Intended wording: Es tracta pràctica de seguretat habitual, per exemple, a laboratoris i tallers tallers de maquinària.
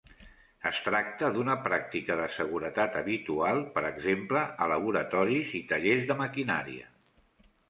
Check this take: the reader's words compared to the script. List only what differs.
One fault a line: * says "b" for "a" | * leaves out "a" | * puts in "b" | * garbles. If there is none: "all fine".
* puts in "d'una"
* leaves out "tallers"